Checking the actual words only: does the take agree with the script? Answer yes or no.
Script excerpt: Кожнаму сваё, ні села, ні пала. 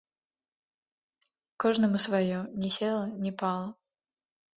yes